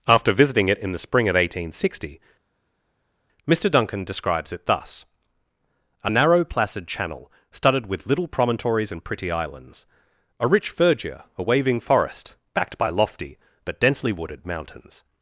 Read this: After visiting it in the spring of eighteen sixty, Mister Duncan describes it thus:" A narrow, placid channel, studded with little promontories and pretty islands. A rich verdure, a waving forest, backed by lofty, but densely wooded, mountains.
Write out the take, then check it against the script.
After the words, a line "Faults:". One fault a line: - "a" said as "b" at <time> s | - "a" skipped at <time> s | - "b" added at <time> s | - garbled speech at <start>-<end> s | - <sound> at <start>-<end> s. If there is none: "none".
After visiting it in the spring of eighteen sixty, Mister Duncan describes it thus:" A narrow, placid channel, studded with little promontories and pretty islands. A rich verdure, a waving forest, backed by lofty, but densely wooded, mountains.
Faults:
none